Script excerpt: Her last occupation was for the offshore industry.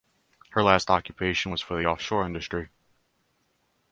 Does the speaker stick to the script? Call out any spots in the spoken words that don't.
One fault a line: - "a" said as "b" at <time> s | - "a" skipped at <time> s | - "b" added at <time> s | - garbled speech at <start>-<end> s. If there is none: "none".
none